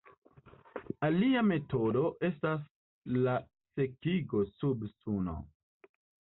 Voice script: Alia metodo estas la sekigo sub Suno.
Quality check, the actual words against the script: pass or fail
pass